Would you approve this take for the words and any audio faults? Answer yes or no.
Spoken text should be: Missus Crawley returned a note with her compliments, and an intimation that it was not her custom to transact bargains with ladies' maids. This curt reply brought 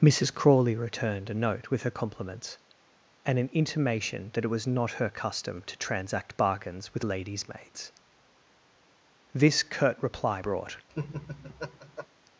no